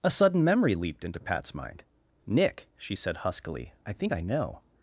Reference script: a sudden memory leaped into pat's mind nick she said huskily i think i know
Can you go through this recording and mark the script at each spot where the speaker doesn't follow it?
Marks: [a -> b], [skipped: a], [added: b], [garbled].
a sudden memory leaped into pat's mind nick she said huskily i think i know